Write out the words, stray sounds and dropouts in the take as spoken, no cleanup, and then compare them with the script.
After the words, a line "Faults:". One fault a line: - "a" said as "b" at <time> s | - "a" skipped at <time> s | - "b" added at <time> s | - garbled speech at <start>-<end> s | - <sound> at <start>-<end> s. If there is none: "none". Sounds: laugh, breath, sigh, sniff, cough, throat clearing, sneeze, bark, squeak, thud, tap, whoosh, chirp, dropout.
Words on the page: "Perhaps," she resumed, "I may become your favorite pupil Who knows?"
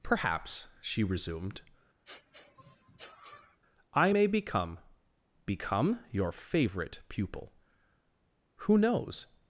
"Perhaps," she resumed, "I may become become your favorite pupil Who knows?"
Faults:
- sniff at 2.0-3.6 s
- "become" added at 5.5 s